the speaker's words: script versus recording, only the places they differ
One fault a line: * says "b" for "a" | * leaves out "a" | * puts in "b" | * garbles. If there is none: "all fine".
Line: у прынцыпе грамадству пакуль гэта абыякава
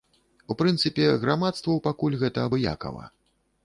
all fine